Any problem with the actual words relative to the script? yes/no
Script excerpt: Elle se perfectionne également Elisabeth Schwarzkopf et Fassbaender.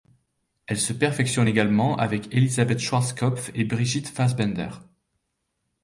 yes